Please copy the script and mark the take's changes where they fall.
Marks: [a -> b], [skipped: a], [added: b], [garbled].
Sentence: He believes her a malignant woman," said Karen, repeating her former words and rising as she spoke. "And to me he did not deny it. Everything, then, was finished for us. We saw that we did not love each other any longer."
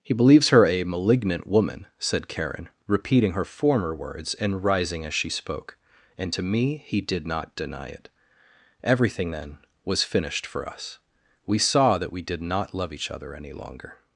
He believes her a malignant woman," said Karen, repeating her former words and rising as she spoke. "And to me he did not deny it. Everything, then, was finished for us. We saw that we did not love each other any longer."